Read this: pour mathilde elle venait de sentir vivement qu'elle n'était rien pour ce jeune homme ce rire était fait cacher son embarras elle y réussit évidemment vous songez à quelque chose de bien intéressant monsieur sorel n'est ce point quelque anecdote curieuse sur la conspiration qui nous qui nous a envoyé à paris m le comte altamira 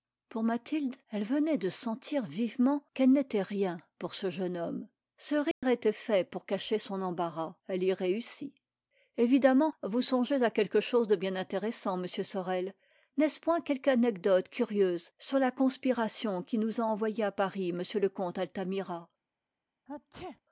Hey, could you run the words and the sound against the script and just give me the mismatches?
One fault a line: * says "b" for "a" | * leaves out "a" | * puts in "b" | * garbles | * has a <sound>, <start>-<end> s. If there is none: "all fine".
* has a dropout, 5.5-5.6 s
* puts in "pour"
* leaves out "qui nous"
* has a sneeze, 19.9-20.4 s